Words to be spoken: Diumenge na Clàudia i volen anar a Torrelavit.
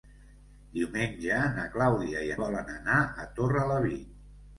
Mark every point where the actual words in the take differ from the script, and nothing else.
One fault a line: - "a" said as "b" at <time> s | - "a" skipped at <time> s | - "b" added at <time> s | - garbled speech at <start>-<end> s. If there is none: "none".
none